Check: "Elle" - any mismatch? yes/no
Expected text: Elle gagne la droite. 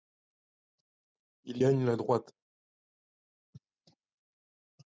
yes